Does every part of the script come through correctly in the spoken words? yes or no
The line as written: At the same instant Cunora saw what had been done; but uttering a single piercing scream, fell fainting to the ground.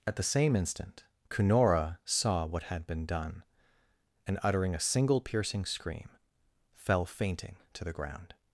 no